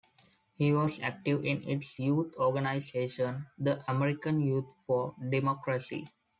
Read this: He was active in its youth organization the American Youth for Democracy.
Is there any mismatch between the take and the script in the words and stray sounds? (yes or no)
no